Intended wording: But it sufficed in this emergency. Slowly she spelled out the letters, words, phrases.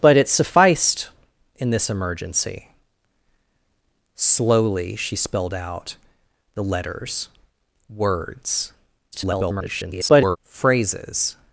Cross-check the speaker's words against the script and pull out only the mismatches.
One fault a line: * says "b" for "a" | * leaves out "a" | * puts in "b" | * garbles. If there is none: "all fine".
* garbles